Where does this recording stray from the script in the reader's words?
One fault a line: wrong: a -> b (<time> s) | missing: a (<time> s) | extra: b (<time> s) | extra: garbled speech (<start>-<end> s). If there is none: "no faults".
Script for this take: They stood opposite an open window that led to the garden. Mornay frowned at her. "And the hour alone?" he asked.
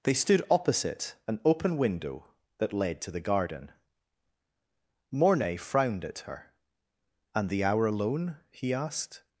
no faults